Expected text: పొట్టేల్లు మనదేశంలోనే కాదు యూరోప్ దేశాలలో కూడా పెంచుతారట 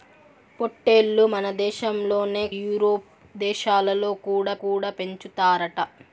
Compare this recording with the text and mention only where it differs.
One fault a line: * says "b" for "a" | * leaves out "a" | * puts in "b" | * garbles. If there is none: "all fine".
* leaves out "కాదు"
* puts in "కూడా"